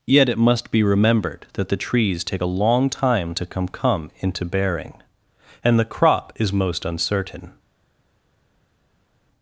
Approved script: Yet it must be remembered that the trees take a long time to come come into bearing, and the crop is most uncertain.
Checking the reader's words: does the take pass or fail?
pass